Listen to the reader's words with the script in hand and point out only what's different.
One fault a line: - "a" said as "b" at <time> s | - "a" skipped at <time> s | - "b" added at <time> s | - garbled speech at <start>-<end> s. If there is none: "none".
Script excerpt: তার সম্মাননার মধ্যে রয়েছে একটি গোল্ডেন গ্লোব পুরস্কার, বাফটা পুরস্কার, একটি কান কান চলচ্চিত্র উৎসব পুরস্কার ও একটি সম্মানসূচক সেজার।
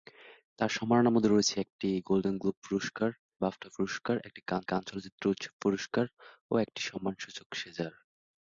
none